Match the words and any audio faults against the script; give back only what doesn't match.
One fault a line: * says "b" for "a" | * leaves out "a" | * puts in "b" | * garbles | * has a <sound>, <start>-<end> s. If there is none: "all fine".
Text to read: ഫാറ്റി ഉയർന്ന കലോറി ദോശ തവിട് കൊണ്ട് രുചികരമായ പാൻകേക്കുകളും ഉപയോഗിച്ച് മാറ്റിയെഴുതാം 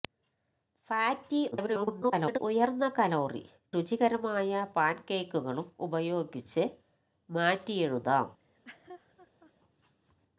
* garbles
* leaves out "ദോശ തവിട് കൊണ്ട്"
* has a laugh, 8.4-9.5 s